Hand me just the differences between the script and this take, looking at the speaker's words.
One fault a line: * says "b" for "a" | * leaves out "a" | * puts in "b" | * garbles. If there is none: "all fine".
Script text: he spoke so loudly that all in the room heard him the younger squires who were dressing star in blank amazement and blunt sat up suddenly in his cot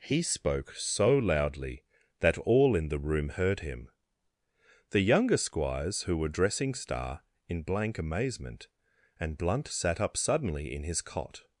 all fine